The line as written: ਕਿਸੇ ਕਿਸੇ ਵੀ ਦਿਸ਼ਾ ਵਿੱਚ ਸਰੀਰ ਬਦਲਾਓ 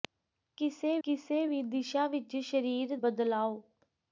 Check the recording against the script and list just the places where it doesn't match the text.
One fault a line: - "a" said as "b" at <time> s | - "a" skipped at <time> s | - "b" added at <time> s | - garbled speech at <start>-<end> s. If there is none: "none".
none